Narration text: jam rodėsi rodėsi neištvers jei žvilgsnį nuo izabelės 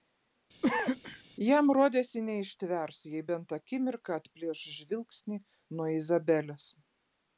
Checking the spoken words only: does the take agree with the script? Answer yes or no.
no